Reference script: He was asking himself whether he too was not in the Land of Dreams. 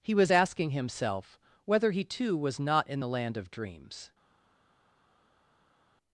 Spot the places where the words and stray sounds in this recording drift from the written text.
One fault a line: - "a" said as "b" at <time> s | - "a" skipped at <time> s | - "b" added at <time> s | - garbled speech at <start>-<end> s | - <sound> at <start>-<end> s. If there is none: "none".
none